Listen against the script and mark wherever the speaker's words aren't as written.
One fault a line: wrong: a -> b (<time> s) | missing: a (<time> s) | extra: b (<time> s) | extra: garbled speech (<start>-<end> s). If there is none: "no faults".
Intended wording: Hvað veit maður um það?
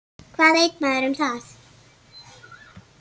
no faults